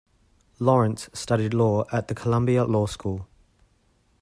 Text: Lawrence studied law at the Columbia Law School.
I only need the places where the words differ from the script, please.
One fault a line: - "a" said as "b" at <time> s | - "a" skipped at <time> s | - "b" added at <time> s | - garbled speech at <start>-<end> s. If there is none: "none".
none